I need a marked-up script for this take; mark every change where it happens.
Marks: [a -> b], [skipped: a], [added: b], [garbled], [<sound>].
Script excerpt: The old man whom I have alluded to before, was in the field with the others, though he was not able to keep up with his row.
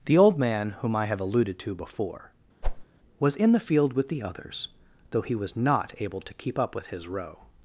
The old man whom I have alluded to before, [whoosh] was in the field with the others, though he was not able to keep up with his row.